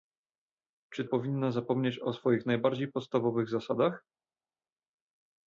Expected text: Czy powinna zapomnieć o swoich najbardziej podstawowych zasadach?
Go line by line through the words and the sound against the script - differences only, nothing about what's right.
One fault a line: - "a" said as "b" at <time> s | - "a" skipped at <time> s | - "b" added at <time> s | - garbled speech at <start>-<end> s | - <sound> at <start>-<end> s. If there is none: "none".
none